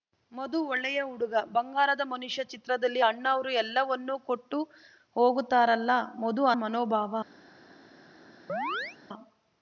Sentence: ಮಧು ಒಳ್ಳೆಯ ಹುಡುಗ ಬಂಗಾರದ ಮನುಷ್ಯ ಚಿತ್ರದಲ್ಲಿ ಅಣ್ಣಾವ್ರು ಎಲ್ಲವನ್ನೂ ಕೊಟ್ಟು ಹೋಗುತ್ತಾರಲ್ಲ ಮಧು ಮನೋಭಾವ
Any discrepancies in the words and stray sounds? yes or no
yes